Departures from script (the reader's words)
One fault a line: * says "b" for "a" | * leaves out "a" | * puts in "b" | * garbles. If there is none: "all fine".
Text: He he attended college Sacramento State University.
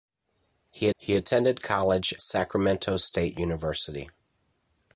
all fine